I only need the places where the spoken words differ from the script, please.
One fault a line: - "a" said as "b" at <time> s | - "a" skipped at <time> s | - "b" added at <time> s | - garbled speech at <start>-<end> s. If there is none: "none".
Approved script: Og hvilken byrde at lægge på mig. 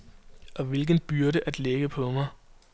none